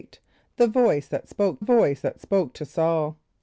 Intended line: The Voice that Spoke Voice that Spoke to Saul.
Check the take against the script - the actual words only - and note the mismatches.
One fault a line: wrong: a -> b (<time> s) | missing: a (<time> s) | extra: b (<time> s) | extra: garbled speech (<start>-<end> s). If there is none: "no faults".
no faults